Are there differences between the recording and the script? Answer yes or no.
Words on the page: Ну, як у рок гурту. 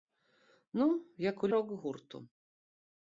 no